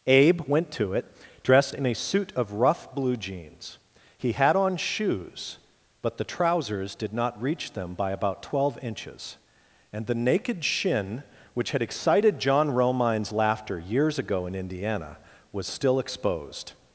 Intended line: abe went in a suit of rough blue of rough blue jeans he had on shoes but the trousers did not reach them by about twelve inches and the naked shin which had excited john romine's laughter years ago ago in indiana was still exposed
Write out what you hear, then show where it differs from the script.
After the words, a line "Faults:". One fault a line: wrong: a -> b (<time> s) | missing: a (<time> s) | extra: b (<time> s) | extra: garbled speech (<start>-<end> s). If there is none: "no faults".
abe went to it dressed in a suit of rough blue jeans he had on shoes but the trousers did not reach them by about twelve inches and the naked shin which had excited john romine's laughter years ago in indiana was still exposed
Faults:
extra: to it dressed (0.7 s)
missing: of rough blue (3.2 s)
missing: ago (14.5 s)